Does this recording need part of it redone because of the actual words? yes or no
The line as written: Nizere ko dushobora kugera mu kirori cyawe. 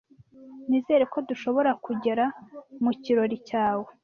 no